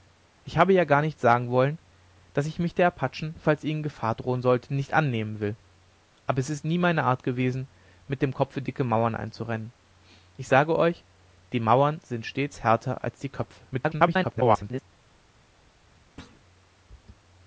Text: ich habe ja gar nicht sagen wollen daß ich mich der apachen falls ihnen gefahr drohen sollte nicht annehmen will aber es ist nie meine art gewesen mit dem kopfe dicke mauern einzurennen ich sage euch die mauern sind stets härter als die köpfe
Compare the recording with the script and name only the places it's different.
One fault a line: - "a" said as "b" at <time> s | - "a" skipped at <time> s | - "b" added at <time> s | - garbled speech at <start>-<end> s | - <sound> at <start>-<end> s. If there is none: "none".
- garbled speech at 13.7-14.8 s
- thud at 16.2-16.4 s